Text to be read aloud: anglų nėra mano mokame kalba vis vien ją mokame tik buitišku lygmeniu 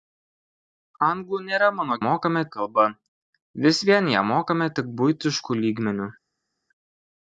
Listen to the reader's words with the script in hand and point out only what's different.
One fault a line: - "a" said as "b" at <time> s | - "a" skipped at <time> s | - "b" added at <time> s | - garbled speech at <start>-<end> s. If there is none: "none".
none